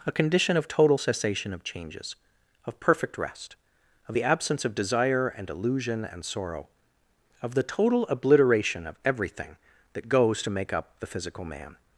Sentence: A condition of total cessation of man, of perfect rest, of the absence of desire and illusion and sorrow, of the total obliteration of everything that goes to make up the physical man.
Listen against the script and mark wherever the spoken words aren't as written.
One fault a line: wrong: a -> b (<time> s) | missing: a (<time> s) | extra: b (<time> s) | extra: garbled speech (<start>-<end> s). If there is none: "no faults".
wrong: man -> changes (1.6 s)